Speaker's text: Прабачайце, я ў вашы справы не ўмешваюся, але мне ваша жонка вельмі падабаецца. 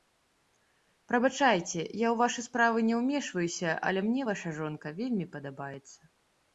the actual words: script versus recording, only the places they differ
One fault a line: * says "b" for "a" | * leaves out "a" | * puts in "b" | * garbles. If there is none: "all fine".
all fine